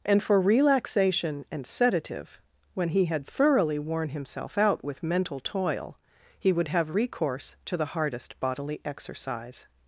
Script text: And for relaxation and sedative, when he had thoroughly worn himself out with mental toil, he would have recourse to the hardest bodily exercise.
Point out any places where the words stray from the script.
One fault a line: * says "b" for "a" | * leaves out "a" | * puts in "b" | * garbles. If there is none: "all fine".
all fine